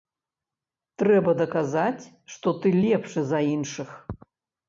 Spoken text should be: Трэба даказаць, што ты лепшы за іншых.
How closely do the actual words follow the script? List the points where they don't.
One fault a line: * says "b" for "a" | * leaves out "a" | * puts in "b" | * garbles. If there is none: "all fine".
all fine